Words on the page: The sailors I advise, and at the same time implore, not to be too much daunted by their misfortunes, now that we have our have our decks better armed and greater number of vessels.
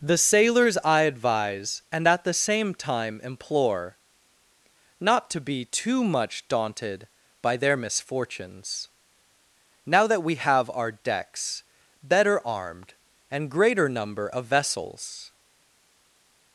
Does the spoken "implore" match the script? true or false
true